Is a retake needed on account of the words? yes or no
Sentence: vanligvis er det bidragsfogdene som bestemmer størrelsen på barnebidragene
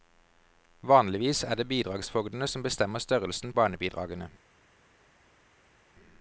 yes